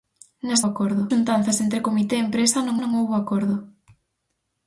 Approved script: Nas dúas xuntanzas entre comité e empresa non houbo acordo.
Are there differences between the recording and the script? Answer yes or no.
yes